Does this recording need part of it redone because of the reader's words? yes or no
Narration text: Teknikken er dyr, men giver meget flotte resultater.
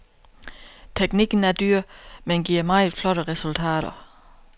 no